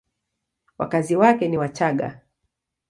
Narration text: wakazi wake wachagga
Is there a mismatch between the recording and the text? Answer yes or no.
yes